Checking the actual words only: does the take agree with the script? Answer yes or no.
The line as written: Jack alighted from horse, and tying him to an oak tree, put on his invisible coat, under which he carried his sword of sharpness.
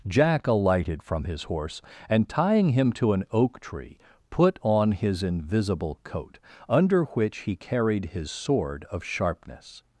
no